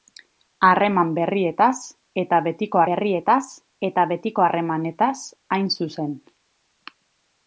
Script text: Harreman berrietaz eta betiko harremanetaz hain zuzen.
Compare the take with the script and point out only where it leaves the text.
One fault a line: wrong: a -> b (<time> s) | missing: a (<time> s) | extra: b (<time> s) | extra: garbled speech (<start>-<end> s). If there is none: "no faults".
extra: berrietaz eta betiko (2.9 s)